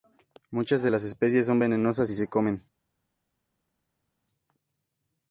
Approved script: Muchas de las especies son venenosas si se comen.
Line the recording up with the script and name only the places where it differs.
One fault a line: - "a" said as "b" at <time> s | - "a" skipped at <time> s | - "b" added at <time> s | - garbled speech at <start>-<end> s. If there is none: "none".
none